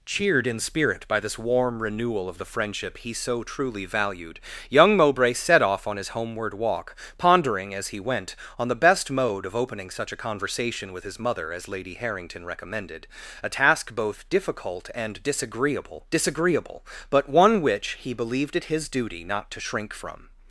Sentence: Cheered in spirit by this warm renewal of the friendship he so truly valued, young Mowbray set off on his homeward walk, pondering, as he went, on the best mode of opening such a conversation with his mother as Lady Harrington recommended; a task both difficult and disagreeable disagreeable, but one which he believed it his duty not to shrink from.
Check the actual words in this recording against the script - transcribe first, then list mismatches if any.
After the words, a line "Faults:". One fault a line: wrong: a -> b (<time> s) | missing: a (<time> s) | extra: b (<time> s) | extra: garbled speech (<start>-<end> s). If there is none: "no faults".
Cheered in spirit by this warm renewal of the friendship he so truly valued, young Mowbray set off on his homeward walk, pondering, as he went, on the best mode of opening such a conversation with his mother as Lady Harrington recommended; a task both difficult and disagreeable disagreeable, but one which he believed it his duty not to shrink from.
Faults:
no faults